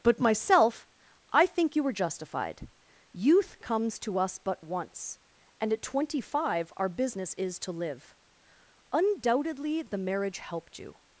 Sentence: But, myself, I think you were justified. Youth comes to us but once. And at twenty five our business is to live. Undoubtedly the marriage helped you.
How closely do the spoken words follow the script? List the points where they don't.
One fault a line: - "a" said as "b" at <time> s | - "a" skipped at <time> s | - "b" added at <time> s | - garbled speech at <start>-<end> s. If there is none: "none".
none